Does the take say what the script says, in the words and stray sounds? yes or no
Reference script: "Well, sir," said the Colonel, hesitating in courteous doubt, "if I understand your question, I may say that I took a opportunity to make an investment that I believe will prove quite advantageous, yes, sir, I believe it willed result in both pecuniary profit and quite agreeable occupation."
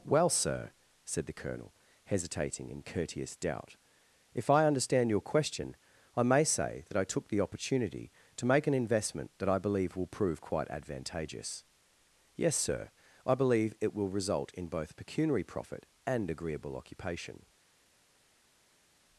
no